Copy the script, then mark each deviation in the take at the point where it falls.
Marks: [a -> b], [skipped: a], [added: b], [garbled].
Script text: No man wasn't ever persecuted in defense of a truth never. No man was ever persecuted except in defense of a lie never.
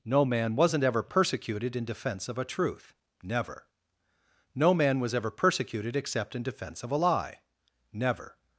No man wasn't ever persecuted in defense of a truth never. No man was ever persecuted except in defense of a lie never.